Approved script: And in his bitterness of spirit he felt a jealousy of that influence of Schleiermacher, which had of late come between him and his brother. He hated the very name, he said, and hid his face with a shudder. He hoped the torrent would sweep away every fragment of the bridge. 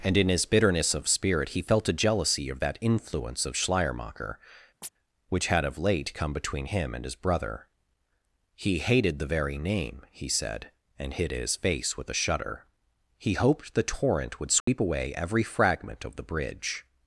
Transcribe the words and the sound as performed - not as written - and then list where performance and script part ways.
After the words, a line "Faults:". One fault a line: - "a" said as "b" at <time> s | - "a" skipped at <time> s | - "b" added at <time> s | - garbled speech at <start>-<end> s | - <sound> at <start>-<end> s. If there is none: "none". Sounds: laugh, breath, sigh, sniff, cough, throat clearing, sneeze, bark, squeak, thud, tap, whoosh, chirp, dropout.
And in his bitterness of spirit he felt a jealousy of that influence of Schleiermacher, which had of late come between him and his brother. He hated the very name, he said, and hid his face with a shudder. He hoped the torrent would sweep away every fragment of the bridge.
Faults:
- chirp at 4.8-4.9 s
- dropout at 14.6-14.7 s